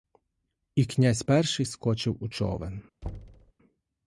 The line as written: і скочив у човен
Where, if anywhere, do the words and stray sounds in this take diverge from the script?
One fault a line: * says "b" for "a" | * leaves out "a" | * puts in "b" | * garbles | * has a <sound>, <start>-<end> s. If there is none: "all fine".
* puts in "князь перший"
* has a thud, 3.0-3.5 s